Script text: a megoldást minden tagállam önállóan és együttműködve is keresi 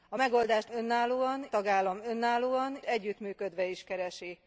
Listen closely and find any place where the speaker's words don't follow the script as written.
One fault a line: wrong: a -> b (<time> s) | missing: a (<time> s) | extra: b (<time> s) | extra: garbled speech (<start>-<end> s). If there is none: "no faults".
wrong: minden -> önállóan (0.7 s)
missing: és (2.8 s)